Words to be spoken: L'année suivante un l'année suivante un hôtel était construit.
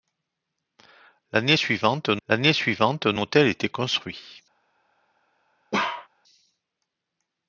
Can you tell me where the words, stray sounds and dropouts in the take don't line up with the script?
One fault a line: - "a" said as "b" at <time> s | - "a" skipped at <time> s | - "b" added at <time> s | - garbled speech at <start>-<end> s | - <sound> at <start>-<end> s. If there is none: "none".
- bark at 5.7-6.1 s